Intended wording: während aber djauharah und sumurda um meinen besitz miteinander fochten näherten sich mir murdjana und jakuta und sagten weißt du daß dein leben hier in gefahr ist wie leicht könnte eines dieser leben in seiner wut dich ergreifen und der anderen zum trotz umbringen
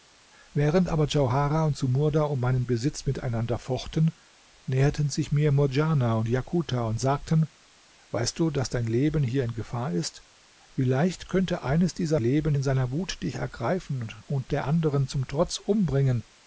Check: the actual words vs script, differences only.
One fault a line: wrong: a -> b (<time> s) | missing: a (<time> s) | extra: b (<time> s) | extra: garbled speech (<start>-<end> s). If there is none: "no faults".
no faults